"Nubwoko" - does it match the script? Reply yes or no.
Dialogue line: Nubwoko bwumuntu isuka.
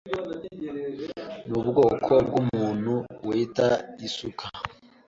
yes